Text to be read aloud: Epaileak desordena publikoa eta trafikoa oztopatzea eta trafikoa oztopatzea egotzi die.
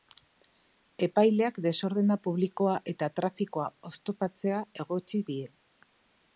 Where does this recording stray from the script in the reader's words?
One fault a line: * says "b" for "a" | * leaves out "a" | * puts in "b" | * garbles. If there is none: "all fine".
* leaves out "eta trafikoa oztopatzea"